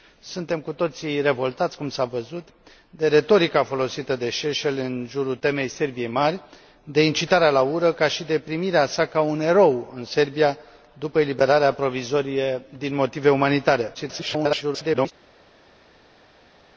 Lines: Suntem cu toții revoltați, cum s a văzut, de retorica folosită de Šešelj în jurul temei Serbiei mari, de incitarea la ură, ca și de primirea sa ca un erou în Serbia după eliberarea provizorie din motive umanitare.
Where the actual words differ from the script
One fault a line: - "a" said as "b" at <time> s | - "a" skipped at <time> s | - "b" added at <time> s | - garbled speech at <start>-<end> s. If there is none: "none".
- garbled speech at 13.9-15.1 s